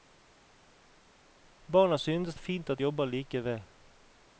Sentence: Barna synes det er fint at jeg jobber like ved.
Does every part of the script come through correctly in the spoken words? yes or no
no